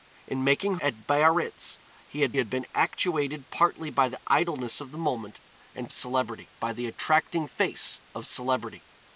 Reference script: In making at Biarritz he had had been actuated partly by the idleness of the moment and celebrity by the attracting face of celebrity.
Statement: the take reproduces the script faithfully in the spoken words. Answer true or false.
true